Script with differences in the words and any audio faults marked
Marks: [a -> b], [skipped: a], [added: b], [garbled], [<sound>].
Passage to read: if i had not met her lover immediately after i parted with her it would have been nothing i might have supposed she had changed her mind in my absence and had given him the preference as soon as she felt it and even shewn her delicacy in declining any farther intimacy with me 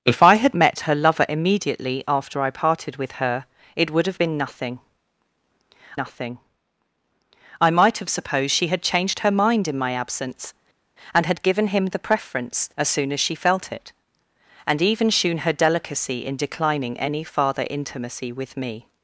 if i had [skipped: not] met her lover immediately after i parted with her it would have been nothing [added: nothing] i might have supposed she had changed her mind in my absence and had given him the preference as soon as she felt it and even shewn her delicacy in declining any farther intimacy with me